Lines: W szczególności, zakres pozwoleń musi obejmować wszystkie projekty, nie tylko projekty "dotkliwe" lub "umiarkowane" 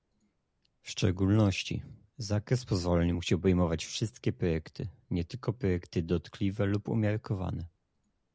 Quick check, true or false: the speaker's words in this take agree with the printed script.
true